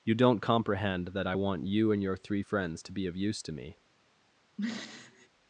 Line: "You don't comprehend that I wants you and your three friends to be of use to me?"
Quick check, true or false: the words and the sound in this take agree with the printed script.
false